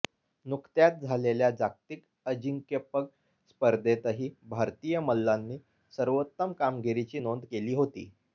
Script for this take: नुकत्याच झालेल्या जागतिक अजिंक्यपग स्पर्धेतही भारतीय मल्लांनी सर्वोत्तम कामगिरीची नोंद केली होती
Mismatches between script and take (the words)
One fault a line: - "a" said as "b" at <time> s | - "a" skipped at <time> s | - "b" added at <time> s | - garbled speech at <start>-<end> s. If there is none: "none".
none